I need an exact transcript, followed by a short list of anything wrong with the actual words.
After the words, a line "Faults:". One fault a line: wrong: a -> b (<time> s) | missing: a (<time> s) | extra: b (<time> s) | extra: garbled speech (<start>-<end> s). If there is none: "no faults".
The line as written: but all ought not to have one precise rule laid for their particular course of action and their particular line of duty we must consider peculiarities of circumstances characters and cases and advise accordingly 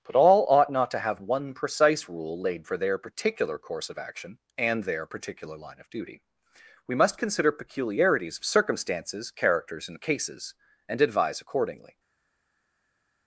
but all ought not to have one precise rule laid for their particular course of action and their particular line of duty we must consider peculiarities of circumstances characters and cases and advise accordingly
Faults:
no faults